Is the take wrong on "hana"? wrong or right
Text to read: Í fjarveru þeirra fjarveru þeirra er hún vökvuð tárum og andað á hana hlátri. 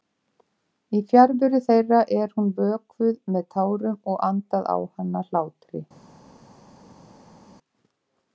right